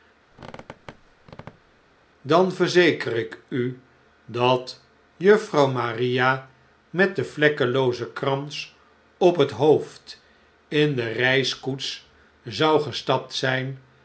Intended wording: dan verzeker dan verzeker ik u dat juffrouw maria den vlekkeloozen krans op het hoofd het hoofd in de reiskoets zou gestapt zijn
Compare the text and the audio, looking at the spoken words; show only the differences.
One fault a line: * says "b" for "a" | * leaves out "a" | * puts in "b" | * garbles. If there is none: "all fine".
* leaves out "dan verzeker"
* puts in "met"
* leaves out "het hoofd"